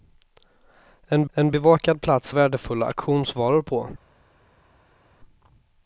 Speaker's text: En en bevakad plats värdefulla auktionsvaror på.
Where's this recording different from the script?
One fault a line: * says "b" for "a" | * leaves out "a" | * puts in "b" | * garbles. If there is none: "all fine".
all fine